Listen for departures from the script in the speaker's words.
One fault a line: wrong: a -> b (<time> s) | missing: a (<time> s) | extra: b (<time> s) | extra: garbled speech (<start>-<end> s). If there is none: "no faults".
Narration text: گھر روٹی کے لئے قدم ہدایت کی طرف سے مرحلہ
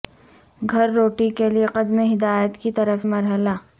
missing: سے (3.0 s)